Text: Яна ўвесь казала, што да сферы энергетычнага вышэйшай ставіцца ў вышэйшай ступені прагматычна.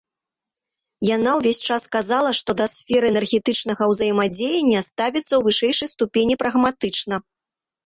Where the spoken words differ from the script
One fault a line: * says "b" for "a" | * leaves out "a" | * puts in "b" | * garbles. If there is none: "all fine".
* puts in "час"
* says "ўзаемадзеяння" for "вышэйшай"